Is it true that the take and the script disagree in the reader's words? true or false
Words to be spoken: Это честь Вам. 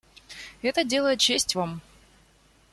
true